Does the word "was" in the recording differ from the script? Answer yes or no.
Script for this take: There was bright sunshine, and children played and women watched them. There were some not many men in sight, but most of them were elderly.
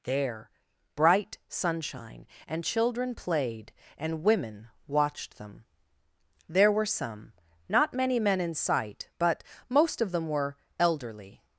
yes